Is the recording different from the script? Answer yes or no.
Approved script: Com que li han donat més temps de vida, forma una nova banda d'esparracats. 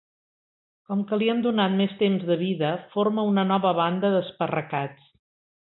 no